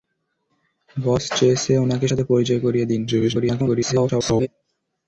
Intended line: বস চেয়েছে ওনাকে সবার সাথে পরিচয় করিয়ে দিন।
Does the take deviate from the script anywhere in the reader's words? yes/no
yes